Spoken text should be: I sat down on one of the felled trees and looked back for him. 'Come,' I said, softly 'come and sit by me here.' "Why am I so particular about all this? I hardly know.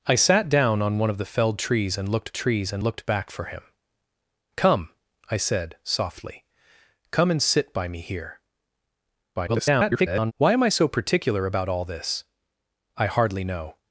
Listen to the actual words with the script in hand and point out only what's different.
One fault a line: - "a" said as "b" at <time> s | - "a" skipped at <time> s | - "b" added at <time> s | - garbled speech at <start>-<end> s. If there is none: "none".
- "trees and looked" added at 2.3 s
- garbled speech at 9.4-10.3 s